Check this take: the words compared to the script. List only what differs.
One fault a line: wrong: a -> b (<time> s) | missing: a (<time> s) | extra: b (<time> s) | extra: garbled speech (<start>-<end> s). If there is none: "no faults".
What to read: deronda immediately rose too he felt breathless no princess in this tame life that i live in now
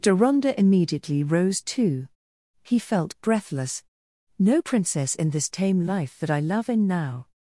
wrong: live -> love (6.4 s)